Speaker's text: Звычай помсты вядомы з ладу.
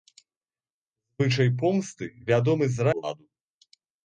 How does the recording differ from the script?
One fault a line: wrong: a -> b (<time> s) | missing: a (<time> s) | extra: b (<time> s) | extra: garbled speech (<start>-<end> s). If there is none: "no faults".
no faults